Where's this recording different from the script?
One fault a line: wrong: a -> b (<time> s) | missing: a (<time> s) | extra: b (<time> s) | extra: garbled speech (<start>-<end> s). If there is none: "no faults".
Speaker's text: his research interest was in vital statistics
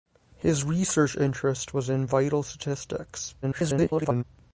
extra: garbled speech (3.4-4.2 s)